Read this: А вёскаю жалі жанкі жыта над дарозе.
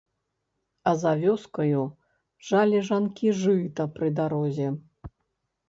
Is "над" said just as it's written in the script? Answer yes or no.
no